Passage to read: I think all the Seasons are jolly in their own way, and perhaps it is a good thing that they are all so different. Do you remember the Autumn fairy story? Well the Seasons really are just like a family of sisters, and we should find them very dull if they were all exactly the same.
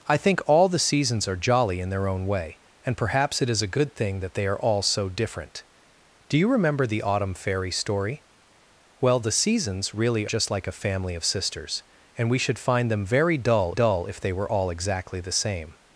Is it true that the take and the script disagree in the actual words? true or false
true